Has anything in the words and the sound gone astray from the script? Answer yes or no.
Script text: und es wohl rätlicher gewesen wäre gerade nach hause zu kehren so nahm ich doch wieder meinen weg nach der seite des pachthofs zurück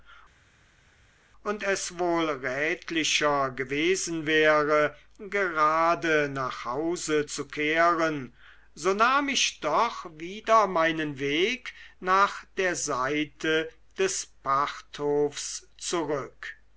no